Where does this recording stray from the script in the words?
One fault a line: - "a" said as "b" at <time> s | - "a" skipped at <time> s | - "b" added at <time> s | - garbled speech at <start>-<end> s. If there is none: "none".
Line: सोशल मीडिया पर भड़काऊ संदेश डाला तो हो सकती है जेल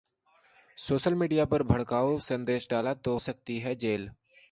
- "हो" skipped at 3.2 s